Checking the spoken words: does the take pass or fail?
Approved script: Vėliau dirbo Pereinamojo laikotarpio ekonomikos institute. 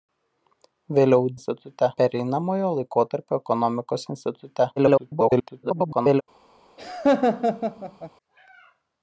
fail